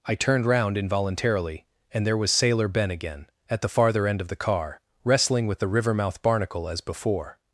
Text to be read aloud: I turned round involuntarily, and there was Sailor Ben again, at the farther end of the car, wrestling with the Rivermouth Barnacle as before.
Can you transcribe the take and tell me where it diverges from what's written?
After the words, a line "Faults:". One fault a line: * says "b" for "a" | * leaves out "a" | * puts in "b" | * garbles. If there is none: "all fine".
I turned round involuntarily, and there was Sailor Ben again, at the farther end of the car, wrestling with the Rivermouth Barnacle as before.
Faults:
all fine